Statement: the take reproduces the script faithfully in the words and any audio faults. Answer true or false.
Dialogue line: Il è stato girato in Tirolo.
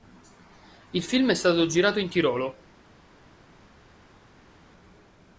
false